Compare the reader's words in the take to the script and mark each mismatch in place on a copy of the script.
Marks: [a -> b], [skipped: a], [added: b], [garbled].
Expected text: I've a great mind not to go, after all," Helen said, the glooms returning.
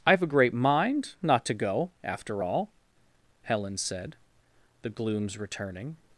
I've a great mind not to go, after all," Helen said, the glooms returning.